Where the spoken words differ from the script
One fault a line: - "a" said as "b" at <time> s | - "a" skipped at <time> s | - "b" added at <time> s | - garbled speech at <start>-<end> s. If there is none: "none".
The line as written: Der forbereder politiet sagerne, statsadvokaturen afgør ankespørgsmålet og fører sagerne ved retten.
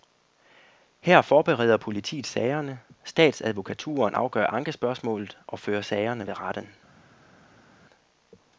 - "Der" said as "Her" at 1.0 s